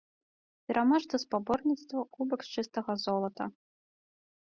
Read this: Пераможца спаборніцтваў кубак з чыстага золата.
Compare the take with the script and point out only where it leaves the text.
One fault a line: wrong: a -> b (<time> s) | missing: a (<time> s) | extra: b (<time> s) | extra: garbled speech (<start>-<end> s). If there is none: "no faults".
no faults